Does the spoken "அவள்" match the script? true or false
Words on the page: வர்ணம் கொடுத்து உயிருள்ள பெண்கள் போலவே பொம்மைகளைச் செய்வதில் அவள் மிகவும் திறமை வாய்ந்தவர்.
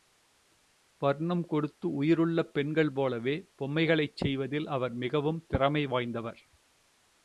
false